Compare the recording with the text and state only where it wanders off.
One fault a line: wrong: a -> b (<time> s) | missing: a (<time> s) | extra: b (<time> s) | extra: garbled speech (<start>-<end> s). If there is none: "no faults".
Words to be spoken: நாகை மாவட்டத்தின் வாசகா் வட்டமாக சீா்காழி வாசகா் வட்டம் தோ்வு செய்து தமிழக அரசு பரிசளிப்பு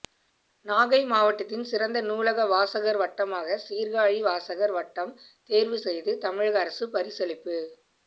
extra: சிறந்த நூலக (1.6 s)